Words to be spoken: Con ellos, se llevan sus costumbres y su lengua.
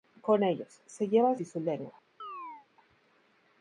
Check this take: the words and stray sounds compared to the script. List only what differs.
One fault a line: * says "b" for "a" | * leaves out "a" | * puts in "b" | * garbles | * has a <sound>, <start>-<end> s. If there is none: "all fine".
* leaves out "sus costumbres"
* has a chirp, 2.2-2.7 s